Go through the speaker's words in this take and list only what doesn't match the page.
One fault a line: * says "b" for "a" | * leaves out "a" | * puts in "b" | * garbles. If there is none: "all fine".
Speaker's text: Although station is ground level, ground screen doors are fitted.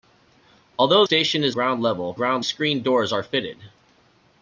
all fine